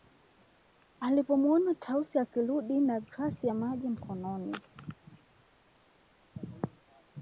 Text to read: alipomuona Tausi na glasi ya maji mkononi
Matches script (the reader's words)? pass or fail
fail